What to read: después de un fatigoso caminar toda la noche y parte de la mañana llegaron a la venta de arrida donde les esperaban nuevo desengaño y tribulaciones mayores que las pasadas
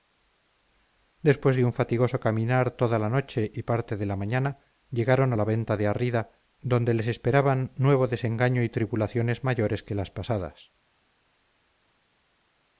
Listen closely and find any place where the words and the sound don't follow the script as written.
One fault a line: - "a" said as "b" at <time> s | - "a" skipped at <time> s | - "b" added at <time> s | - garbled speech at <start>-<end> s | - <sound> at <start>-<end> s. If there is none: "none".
none